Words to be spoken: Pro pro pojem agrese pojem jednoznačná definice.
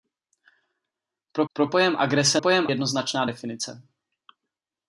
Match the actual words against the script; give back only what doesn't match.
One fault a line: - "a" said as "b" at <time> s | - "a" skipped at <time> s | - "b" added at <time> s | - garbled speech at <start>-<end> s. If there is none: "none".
none